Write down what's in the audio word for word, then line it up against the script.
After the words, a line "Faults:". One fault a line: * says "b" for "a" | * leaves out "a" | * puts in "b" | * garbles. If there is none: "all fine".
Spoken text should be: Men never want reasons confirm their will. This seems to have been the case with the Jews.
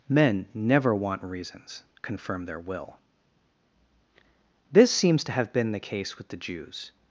Men never want reasons confirm their will. This seems to have been the case with the Jews.
Faults:
all fine